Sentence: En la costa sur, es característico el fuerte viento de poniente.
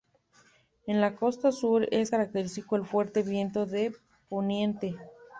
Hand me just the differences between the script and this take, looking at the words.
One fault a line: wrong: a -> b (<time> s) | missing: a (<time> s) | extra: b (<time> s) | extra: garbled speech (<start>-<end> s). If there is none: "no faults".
no faults